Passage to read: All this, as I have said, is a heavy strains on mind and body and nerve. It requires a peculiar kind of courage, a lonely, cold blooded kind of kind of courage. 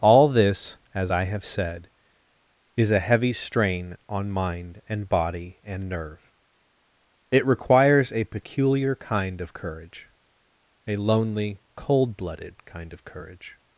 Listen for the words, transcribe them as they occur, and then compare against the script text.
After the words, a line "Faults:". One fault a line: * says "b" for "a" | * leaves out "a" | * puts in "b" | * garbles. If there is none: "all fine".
All this, as I have said, is a heavy strain on mind and body and nerve. It requires a peculiar kind of courage, a lonely, cold blooded kind of courage.
Faults:
* says "strain" for "strains"
* leaves out "kind of"